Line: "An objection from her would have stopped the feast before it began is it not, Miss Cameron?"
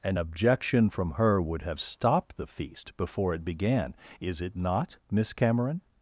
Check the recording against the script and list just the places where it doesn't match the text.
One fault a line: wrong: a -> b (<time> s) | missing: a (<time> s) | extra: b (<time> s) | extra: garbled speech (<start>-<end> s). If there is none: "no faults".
no faults